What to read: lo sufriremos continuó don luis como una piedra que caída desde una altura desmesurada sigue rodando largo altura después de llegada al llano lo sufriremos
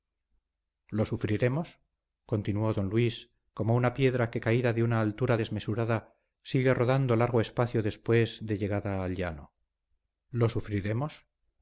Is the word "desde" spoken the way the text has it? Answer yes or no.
no